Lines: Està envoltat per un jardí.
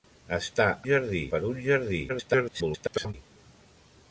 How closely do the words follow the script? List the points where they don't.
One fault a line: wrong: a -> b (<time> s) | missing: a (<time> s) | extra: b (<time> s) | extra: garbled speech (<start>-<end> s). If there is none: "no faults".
wrong: envoltat -> jardí (0.9 s)
extra: garbled speech (2.1-3.1 s)